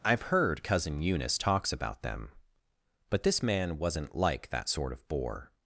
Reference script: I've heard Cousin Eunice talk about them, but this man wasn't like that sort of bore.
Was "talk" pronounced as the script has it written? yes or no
no